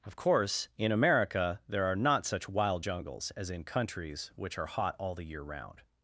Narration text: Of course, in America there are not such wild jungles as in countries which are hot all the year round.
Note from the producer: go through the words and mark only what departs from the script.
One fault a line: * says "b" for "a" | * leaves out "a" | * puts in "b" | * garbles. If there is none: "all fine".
all fine